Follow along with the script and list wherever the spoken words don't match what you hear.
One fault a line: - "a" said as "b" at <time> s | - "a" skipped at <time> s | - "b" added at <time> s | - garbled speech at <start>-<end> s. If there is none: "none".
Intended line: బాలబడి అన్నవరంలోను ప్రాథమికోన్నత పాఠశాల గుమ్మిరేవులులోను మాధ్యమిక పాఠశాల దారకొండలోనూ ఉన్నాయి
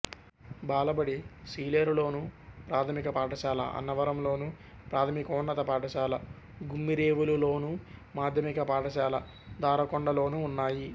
- "సీలేరులోను ప్రాథమిక పాఠశాల" added at 1.5 s